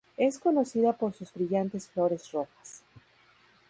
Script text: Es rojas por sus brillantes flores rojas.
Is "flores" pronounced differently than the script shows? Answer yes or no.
no